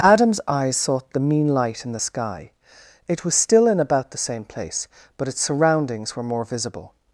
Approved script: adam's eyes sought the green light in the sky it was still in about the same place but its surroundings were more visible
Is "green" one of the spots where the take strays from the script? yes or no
yes